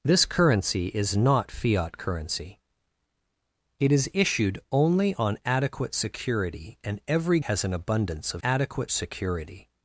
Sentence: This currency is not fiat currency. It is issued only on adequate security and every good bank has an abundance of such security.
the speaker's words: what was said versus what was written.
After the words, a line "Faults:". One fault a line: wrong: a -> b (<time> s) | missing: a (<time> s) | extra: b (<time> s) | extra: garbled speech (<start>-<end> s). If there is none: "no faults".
This currency is not fiat currency. It is issued only on adequate security and every has an abundance of adequate security.
Faults:
missing: good bank (7.4 s)
wrong: such -> adequate (8.4 s)